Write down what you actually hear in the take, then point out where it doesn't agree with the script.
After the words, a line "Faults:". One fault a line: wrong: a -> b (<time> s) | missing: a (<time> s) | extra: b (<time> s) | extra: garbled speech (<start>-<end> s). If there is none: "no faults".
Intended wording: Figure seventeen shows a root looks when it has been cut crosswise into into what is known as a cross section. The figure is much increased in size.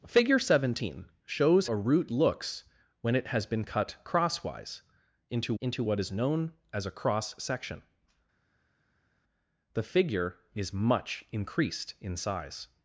Figure seventeen shows a root looks when it has been cut crosswise into into what is known as a cross section. The figure is much increased in size.
Faults:
no faults